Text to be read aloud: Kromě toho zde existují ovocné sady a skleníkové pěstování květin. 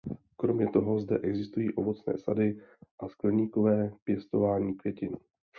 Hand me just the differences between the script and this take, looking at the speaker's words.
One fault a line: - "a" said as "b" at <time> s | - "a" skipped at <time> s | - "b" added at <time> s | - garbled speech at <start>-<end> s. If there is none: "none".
none